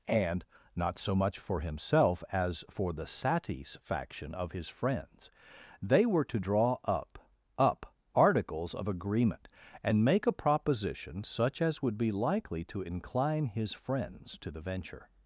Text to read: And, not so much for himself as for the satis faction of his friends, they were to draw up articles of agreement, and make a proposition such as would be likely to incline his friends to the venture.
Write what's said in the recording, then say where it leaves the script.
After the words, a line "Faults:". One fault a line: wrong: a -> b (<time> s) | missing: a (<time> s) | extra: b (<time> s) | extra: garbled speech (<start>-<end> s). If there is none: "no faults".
And, not so much for himself as for the satis faction of his friends, they were to draw up up articles of agreement, and make a proposition such as would be likely to incline his friends to the venture.
Faults:
extra: up (7.6 s)